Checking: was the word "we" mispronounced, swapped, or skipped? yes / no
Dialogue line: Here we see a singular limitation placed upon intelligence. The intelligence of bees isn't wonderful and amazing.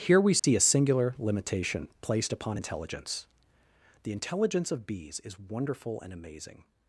no